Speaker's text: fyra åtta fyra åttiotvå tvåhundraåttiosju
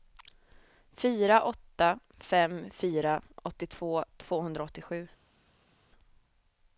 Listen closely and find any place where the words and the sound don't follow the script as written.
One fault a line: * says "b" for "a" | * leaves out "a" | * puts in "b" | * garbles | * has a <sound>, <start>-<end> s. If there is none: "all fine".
* puts in "fem"